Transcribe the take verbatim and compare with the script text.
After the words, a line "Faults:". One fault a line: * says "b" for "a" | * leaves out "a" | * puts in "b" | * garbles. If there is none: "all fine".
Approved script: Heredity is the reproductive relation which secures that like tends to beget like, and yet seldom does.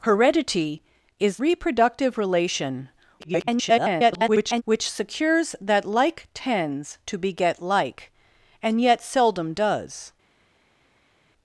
Heredity is reproductive relation [garbled] which secures that like tends to beget like, and yet seldom does.
Faults:
* leaves out "the"
* garbles